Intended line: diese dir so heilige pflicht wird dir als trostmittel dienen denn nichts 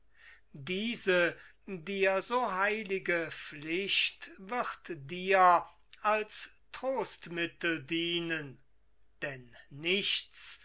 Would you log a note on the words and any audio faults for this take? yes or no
no